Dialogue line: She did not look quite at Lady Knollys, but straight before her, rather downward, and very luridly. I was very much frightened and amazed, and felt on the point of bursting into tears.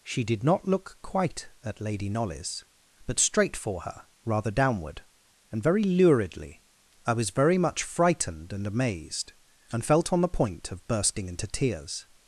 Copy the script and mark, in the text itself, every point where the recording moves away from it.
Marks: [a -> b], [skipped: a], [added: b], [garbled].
She did not look quite at Lady Knollys, but straight [before -> for] her, rather downward, and very luridly. I was very much frightened and amazed, and felt on the point of bursting into tears.